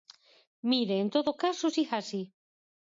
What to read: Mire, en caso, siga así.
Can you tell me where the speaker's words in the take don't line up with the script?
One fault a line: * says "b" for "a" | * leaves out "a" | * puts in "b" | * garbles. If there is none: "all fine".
* puts in "todo"